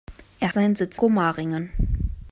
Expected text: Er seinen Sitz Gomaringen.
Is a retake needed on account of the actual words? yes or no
no